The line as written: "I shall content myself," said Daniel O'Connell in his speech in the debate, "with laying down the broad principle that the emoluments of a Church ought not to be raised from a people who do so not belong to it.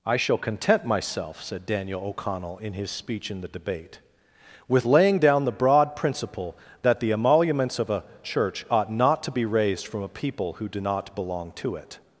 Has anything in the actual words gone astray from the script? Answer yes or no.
yes